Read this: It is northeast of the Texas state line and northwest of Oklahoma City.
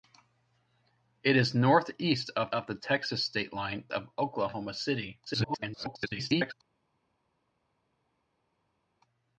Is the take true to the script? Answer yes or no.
no